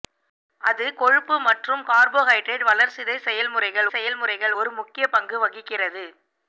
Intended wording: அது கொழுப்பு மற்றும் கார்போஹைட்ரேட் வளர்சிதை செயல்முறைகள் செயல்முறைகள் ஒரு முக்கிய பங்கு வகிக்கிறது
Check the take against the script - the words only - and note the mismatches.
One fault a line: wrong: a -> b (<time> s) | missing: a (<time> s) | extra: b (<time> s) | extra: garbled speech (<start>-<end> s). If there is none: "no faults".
no faults